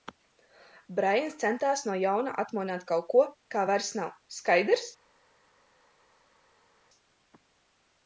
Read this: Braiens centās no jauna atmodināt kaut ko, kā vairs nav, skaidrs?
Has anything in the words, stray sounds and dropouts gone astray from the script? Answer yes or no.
no